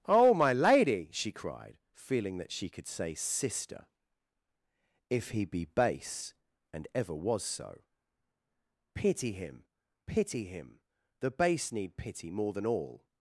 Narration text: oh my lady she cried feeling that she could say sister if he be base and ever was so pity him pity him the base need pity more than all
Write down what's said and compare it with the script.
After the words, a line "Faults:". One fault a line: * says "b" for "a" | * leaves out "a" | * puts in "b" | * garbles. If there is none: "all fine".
oh my lady she cried feeling that she could say sister if he be base and ever was so pity him pity him the base need pity more than all
Faults:
all fine